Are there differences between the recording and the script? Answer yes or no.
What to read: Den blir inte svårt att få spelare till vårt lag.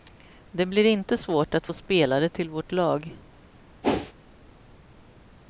yes